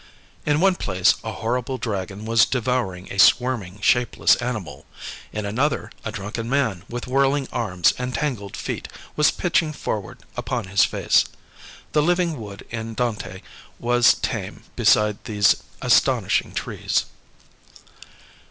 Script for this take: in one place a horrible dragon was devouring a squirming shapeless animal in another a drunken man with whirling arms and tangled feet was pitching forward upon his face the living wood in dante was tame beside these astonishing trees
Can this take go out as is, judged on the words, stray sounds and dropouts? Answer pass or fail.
pass